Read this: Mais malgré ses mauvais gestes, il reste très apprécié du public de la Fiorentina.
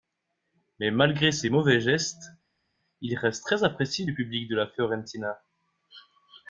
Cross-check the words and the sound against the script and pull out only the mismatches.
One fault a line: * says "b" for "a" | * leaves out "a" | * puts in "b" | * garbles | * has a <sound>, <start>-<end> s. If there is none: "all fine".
all fine